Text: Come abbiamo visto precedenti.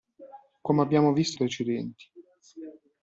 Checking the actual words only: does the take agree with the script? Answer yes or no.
yes